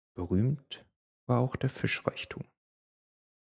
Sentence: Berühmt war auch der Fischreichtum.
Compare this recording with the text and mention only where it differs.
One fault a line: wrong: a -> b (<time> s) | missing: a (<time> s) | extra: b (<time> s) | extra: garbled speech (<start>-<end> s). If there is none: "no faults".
no faults